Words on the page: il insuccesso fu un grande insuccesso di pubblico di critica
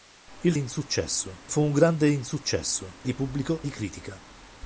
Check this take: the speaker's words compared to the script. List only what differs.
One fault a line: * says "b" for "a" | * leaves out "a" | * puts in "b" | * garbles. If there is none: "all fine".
all fine